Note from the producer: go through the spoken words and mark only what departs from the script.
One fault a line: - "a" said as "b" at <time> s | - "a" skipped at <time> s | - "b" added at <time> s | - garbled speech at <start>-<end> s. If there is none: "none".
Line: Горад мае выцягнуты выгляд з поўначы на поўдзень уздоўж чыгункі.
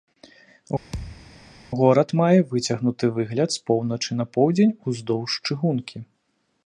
none